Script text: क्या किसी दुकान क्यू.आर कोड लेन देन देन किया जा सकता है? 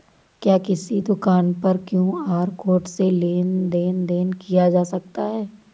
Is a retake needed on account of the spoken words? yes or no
yes